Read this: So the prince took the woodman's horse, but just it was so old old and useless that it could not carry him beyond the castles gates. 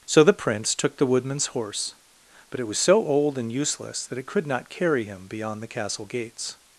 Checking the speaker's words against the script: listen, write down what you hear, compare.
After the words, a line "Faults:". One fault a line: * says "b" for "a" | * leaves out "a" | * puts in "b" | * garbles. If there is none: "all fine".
So the prince took the woodman's horse, but it was so old and useless that it could not carry him beyond the castle gates.
Faults:
* leaves out "just"
* leaves out "old"
* says "castle" for "castles"